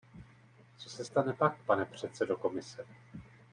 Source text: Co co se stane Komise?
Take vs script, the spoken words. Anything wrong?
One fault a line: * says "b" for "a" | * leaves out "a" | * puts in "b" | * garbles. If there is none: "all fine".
* leaves out "co"
* puts in "pak pane předsedo"